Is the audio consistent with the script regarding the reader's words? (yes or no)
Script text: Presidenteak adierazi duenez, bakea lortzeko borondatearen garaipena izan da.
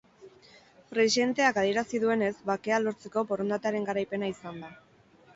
yes